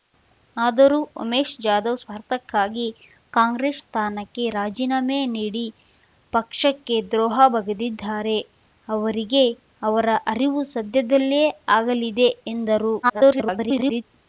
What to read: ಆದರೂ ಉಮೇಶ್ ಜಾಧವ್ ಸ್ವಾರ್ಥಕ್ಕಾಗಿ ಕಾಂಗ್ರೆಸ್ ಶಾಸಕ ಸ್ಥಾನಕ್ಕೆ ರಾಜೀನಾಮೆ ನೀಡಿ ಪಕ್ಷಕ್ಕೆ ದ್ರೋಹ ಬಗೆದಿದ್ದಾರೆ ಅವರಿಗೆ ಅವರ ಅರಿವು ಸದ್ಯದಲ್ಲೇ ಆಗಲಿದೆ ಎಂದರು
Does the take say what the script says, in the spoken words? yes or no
no